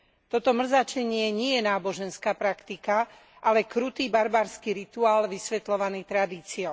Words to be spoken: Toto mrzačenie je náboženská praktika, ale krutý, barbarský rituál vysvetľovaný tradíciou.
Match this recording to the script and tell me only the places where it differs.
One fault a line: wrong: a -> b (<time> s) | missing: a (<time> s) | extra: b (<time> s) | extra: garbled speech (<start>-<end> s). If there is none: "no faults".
extra: nie (1.3 s)